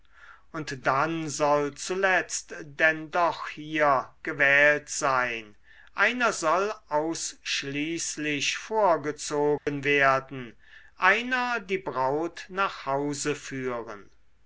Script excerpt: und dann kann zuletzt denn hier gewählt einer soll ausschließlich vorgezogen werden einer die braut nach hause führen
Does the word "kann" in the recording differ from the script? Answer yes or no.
yes